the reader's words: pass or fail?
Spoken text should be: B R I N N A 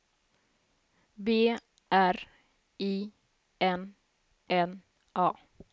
pass